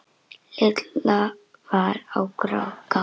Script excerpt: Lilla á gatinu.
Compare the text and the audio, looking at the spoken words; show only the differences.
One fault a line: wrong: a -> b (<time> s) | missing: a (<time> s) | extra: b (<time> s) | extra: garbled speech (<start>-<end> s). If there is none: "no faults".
extra: var (1.7 s)